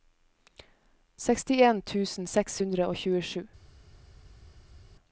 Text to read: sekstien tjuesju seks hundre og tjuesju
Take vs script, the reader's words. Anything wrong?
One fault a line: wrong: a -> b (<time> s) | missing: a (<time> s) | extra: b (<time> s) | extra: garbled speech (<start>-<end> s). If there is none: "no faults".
wrong: tjuesju -> tusen (1.9 s)